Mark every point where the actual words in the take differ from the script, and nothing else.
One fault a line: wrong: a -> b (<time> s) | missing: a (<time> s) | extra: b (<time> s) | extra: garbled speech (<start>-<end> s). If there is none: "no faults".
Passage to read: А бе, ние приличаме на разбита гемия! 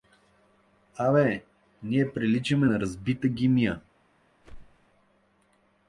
no faults